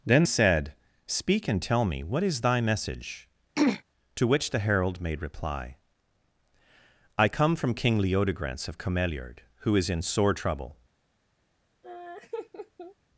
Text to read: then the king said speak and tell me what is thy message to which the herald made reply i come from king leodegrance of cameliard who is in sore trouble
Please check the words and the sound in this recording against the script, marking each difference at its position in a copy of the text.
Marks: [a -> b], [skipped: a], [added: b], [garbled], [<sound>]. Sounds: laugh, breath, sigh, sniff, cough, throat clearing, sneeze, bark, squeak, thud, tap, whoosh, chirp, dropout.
then [skipped: the king] said speak and tell me what is thy message [throat clearing] to which the herald made reply i come from king leodegrance of cameliard who is in sore trouble [laugh]